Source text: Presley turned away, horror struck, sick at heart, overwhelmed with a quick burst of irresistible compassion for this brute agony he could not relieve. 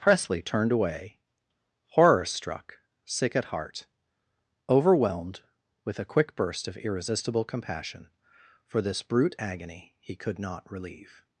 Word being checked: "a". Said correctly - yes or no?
yes